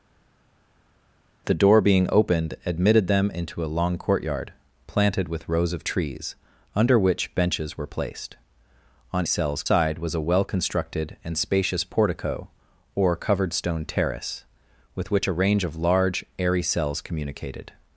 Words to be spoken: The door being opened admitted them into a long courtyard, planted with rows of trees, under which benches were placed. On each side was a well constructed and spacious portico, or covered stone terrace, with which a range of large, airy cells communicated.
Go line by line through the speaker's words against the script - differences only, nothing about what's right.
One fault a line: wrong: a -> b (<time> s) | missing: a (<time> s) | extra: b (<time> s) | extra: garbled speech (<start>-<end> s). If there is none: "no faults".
wrong: each -> cells (9.2 s)